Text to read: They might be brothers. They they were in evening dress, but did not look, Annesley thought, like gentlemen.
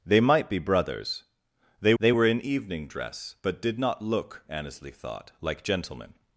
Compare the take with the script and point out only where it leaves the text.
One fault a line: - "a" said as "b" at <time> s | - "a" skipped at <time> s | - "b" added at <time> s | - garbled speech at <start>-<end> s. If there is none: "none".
none